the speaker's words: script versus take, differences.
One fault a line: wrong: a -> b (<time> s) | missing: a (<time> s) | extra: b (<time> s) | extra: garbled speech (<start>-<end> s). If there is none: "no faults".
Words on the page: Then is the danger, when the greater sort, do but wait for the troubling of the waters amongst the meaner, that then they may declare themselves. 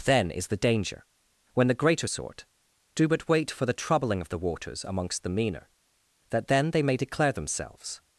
no faults